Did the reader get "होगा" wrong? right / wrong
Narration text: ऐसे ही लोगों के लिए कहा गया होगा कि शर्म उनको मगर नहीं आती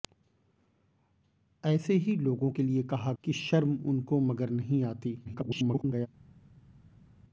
wrong